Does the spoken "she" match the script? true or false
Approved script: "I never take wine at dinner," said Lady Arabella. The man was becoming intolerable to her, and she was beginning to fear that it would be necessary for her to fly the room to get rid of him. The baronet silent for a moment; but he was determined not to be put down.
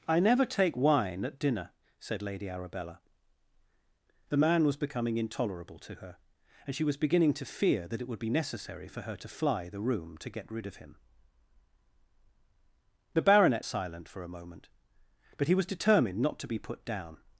true